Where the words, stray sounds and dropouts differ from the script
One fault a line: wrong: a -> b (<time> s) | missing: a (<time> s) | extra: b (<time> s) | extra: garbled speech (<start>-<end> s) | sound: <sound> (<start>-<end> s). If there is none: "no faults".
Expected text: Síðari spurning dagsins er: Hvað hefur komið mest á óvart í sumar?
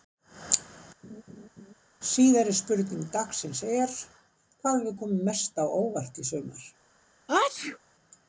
sound: laugh (1.0-1.7 s)
sound: sneeze (7.3-7.8 s)